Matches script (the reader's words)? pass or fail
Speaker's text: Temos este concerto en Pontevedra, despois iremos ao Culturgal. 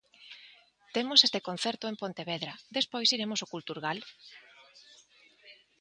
pass